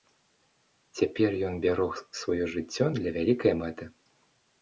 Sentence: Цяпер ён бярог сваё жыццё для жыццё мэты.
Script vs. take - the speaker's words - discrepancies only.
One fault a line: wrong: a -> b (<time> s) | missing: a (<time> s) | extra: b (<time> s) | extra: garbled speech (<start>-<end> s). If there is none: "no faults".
wrong: жыццё -> вялікай (3.2 s)